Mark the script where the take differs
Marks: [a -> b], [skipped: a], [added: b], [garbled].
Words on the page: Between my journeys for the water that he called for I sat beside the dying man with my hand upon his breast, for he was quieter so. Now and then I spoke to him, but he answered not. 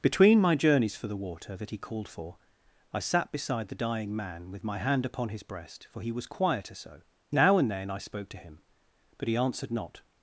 Between my journeys for the water that he called for I sat beside the dying man with my hand upon his breast, for he was quieter so. Now and then I spoke to him, but he answered not.